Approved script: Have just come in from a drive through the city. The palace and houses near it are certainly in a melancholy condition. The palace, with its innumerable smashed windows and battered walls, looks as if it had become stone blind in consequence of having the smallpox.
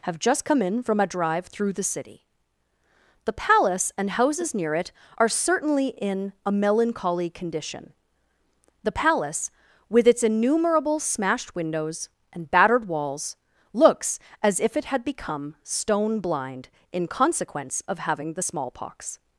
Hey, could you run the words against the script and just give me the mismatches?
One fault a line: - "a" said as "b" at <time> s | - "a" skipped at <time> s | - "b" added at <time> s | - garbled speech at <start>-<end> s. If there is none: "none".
none